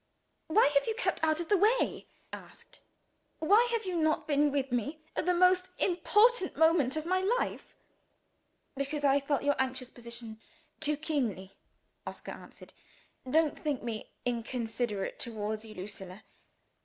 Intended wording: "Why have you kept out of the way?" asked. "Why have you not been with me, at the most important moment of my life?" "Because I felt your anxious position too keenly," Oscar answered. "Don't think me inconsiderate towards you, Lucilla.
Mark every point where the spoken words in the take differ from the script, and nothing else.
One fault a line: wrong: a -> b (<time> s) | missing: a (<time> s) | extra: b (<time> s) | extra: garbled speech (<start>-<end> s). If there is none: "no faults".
no faults